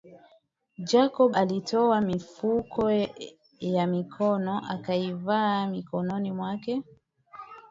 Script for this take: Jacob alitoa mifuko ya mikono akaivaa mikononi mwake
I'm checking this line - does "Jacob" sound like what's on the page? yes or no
yes